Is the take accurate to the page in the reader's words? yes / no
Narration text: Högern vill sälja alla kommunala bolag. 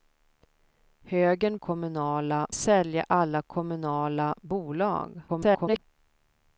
no